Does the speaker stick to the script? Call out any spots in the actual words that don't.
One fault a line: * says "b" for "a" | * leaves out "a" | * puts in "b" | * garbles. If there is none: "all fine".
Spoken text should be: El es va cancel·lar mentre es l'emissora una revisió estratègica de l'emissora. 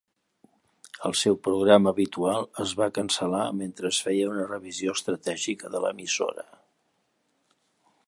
* puts in "seu programa habitual"
* says "feia" for "l'emissora"